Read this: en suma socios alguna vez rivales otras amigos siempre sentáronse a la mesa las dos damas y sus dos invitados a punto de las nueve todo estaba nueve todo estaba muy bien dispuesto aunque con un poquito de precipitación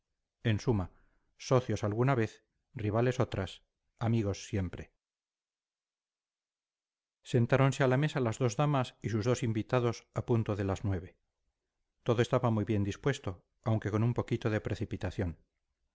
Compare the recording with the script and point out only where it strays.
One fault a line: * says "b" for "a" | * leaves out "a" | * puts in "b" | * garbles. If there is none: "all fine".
* leaves out "nueve todo estaba"